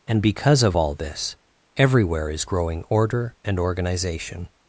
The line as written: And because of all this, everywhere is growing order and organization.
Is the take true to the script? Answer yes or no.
yes